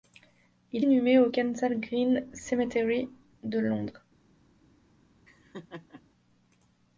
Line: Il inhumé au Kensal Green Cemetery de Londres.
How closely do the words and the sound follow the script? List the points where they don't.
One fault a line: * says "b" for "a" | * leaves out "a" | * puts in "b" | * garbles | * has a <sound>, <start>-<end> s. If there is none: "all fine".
* has a laugh, 5.3-6.0 s